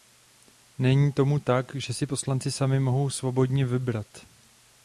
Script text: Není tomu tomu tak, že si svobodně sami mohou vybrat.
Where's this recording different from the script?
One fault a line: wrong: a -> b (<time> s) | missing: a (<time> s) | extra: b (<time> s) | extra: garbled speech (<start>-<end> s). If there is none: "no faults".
missing: tomu (1.4 s)
wrong: svobodně -> poslanci (2.1 s)
extra: svobodně (3.1 s)